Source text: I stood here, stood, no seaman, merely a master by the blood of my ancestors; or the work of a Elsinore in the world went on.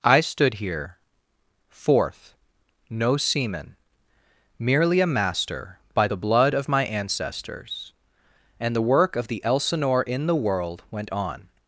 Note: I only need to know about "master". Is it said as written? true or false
true